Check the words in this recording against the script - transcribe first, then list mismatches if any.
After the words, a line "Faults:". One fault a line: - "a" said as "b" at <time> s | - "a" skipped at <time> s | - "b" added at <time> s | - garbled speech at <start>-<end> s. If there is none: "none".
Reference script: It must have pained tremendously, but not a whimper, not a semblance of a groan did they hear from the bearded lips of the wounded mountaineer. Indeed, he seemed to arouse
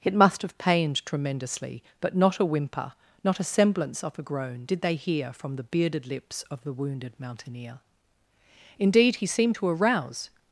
It must have pained tremendously, but not a whimper, not a semblance of a groan did they hear from the bearded lips of the wounded mountaineer. Indeed, he seemed to arouse
Faults:
none